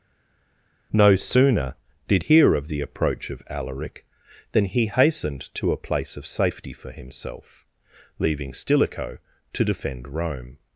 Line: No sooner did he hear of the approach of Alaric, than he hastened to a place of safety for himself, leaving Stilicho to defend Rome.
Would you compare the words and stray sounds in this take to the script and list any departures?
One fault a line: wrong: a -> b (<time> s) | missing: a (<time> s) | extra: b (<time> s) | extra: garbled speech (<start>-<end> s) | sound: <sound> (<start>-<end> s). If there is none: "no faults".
missing: he (2.2 s)